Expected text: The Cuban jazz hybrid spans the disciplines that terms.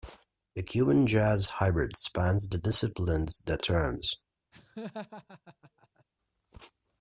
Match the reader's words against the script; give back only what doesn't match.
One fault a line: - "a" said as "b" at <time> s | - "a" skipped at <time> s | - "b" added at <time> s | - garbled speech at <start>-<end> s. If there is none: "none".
none